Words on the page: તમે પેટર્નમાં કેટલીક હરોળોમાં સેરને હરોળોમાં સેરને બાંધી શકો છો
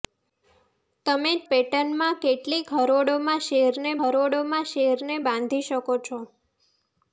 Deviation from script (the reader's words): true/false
false